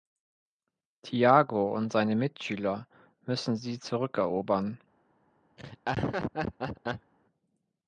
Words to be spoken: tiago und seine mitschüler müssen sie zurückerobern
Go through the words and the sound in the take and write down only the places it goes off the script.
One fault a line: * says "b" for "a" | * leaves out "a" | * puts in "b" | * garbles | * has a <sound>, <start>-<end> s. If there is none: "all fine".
* has a laugh, 5.6-7.1 s